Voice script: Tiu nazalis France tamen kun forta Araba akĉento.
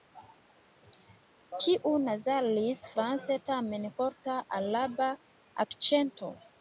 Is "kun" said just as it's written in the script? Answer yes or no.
no